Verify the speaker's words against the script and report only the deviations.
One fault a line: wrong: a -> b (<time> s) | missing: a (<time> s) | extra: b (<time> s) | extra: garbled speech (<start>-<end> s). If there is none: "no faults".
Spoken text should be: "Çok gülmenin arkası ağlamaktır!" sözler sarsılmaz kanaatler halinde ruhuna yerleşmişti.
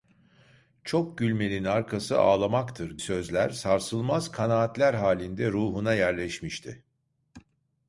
no faults